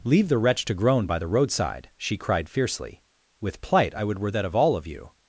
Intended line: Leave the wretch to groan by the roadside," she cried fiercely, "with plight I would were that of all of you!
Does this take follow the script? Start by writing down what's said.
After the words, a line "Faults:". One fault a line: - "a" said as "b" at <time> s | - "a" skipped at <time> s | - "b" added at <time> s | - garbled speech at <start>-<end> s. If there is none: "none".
Leave the wretch to groan by the roadside," she cried fiercely, "with plight I would were that of all of you!
Faults:
none